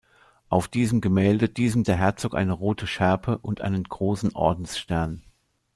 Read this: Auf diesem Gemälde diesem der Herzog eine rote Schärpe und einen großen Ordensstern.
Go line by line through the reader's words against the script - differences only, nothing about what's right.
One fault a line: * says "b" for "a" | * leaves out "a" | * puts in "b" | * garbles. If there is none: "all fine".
all fine